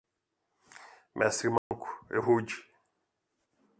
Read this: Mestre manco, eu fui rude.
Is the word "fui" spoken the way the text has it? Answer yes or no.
no